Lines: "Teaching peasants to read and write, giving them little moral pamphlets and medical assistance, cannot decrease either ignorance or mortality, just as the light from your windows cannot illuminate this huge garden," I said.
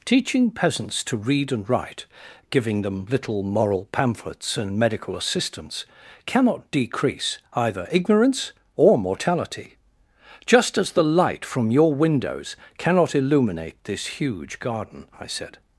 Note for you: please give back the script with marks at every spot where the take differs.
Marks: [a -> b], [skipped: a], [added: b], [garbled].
"Teaching peasants to read and write, giving them little moral pamphlets and medical assistance, cannot decrease either ignorance or mortality, just as the light from your windows cannot illuminate this huge garden," I said.